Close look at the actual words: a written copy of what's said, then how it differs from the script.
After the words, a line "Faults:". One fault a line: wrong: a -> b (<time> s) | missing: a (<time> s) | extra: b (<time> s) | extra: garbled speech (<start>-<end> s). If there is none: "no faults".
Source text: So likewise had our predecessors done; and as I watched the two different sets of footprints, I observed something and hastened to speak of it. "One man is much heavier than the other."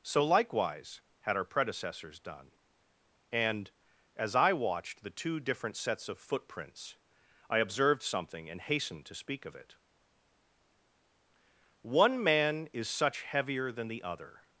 So likewise had our predecessors done; and as I watched the two different sets of footprints, I observed something and hastened to speak of it. "One man is such heavier than the other."
Faults:
wrong: much -> such (12.9 s)